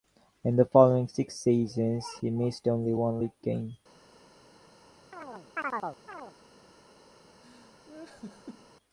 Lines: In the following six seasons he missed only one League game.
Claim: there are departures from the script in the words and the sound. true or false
true